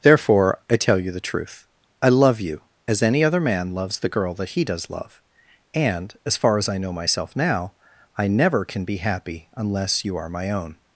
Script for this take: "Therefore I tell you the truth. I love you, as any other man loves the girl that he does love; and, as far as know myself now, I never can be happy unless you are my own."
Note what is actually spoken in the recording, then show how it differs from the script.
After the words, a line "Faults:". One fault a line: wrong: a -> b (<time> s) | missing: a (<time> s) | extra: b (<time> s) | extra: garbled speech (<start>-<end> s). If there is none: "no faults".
"Therefore I tell you the truth. I love you, as any other man loves the girl that he does love; and, as far as I know myself now, I never can be happy unless you are my own."
Faults:
extra: I (6.7 s)